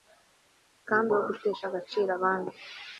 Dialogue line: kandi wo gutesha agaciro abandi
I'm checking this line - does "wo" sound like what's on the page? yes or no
yes